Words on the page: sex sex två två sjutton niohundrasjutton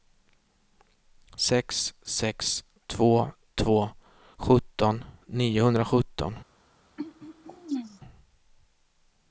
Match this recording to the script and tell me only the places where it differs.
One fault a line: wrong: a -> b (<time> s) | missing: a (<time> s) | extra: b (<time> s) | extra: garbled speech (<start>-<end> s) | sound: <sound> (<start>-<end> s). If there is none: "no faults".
sound: throat clearing (7.0-8.0 s)